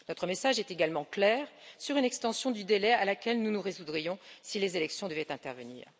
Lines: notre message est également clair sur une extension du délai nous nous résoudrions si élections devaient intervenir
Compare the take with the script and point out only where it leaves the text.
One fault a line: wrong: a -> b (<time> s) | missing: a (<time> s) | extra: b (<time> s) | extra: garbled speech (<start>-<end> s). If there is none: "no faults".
extra: à laquelle (2.9 s)
extra: les (4.6 s)